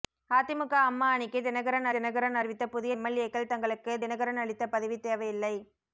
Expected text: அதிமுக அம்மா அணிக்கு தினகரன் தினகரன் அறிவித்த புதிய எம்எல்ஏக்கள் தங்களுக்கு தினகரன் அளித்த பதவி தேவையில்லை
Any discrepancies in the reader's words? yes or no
no